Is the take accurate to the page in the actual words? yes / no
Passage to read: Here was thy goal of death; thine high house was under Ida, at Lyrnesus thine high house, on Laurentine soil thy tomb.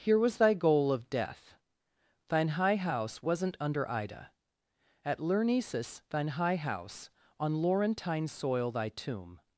no